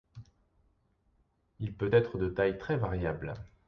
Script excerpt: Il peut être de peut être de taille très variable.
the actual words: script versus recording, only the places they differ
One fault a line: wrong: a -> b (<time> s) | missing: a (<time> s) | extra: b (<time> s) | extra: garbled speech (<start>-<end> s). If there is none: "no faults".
missing: peut être de (2.3 s)